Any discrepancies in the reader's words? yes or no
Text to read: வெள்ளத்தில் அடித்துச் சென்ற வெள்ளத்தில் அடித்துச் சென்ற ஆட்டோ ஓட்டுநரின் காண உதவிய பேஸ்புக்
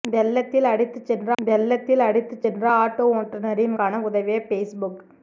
no